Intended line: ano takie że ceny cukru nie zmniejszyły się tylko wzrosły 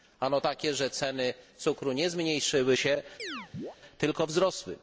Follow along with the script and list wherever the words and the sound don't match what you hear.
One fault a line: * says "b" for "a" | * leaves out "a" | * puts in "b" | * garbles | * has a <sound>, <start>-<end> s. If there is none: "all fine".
* has a chirp, 3.2-3.8 s